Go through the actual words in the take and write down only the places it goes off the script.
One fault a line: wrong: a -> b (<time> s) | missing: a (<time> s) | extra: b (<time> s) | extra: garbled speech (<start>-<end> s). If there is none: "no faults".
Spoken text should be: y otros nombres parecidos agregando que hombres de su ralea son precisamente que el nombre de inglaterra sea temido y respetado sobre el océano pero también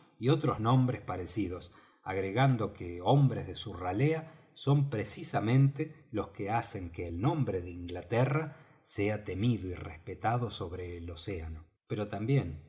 extra: los que hacen (6.1 s)